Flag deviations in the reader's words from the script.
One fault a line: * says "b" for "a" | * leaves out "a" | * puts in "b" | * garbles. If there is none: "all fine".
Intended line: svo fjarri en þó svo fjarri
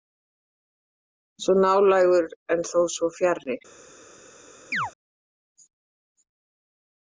* says "nálægur" for "fjarri"